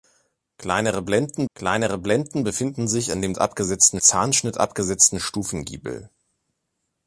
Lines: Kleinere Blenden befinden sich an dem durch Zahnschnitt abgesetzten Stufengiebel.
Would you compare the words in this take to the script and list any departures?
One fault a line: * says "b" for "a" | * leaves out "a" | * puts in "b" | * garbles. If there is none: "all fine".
* puts in "kleinere Blenden"
* says "abgesetzten" for "durch"